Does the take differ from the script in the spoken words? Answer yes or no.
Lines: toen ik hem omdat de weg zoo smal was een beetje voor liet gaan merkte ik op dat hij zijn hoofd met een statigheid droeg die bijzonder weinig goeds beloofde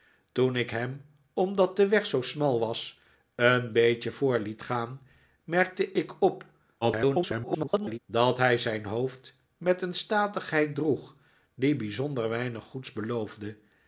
yes